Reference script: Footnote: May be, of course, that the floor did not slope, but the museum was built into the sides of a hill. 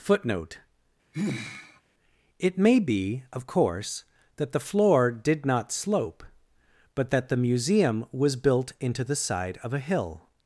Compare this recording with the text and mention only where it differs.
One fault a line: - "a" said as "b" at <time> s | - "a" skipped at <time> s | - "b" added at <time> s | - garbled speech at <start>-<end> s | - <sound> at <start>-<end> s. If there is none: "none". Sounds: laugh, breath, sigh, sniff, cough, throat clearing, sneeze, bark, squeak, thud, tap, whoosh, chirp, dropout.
- sigh at 1.1-1.8 s
- "It" added at 2.4 s
- "that" added at 7.1 s
- "sides" said as "side" at 9.1 s